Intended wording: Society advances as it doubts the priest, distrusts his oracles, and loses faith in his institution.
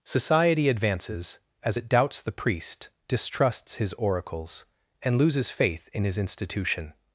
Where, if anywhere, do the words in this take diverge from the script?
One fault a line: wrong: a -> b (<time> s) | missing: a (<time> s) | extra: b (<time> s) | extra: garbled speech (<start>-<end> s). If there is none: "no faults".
no faults